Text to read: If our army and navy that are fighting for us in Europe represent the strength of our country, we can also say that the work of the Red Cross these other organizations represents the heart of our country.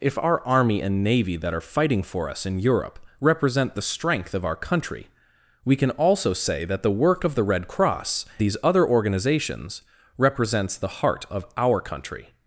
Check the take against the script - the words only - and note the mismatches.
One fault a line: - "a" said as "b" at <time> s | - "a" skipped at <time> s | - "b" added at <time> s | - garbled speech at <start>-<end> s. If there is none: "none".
none